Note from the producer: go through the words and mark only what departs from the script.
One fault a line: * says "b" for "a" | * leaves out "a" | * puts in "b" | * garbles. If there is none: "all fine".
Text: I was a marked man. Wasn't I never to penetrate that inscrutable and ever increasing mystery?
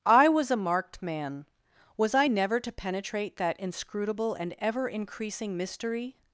* says "Was" for "Wasn't"